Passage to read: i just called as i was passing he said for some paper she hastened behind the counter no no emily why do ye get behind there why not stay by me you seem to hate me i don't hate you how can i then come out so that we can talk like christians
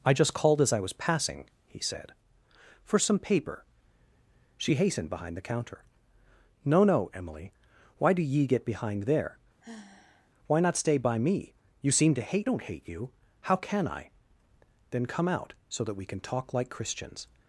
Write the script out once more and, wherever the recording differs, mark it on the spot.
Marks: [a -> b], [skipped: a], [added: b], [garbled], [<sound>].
i just called as i was passing he said for some paper she hastened behind the counter no no emily why do ye get behind there [sigh] why not stay by me you seem to hate [skipped: me i] don't hate you how can i then come out so that we can talk like christians